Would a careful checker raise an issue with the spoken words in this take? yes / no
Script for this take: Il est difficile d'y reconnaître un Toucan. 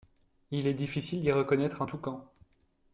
no